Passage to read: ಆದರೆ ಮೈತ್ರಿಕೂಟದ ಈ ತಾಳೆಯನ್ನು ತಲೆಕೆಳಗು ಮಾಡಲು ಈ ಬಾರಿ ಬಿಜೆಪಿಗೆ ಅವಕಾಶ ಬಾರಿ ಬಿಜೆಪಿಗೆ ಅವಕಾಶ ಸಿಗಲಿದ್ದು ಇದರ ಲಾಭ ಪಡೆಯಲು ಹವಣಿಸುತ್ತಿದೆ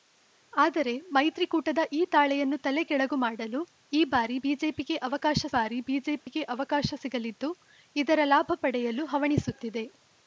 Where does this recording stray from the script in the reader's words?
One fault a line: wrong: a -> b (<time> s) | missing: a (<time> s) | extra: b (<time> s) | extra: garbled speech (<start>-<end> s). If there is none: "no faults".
no faults